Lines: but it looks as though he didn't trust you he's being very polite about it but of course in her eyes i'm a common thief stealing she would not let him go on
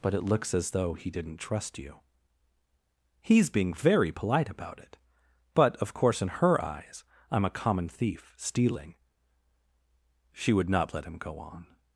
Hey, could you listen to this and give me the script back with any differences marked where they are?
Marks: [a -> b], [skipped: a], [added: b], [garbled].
but it looks as though he didn't trust you he's being very polite about it but of course in her eyes i'm a common thief stealing she would not let him go on